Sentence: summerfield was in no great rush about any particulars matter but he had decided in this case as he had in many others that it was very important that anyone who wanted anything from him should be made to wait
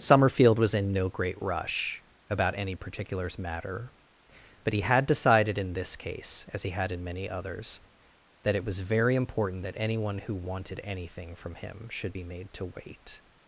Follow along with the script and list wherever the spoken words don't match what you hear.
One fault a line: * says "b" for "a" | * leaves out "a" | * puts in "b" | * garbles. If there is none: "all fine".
all fine